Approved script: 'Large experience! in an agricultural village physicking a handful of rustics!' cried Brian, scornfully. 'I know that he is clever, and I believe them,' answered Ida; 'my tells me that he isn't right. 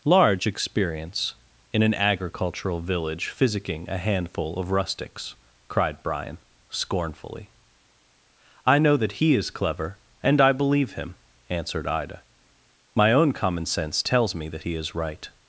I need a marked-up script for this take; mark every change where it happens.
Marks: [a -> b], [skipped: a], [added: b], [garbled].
'Large experience! in an agricultural village physicking a handful of rustics!' cried Brian, scornfully. 'I know that he is clever, and I believe [them,' -> him] answered Ida; 'my [added: own common sense] tells me that he [isn't -> is] right.